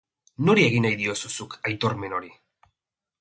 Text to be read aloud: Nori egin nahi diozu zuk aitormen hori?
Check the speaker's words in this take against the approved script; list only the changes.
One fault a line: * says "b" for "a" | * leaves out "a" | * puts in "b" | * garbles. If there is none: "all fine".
all fine